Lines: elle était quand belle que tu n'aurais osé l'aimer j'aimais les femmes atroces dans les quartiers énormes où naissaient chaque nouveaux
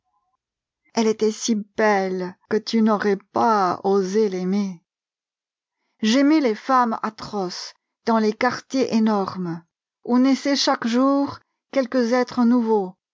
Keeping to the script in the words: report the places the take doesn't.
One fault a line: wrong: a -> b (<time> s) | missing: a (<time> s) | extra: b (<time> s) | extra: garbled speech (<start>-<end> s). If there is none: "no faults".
wrong: quand -> si (1.3 s)
extra: pas (3.2 s)
extra: jour quelques êtres (10.9 s)